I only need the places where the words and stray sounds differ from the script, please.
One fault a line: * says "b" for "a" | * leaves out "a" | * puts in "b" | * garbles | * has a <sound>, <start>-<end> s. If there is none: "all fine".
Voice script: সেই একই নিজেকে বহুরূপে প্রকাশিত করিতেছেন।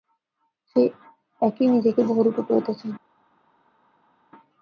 * leaves out "প্রকাশিত"